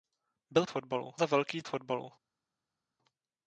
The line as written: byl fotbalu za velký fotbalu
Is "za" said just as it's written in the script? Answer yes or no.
yes